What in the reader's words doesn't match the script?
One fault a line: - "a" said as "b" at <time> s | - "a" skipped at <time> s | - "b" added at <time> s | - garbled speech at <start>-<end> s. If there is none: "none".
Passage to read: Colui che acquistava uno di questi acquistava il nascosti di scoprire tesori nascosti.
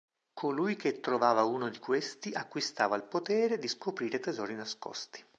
- "acquistava" said as "trovava" at 1.0 s
- "nascosti" said as "potere" at 3.0 s